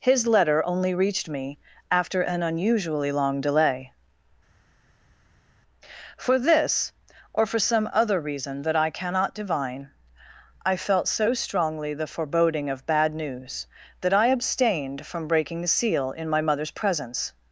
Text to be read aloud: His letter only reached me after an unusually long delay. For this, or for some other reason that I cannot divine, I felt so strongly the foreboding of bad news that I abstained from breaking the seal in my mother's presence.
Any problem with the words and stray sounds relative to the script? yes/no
no